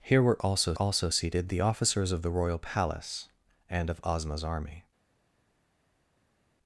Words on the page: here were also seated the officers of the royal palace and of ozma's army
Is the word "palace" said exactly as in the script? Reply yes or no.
yes